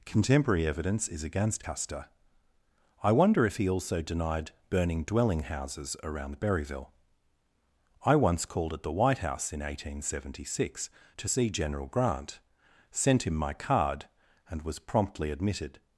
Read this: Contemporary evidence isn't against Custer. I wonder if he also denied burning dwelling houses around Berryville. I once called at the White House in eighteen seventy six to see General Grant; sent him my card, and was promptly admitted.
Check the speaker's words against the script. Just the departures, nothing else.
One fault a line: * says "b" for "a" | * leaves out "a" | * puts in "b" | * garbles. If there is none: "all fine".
* says "is" for "isn't"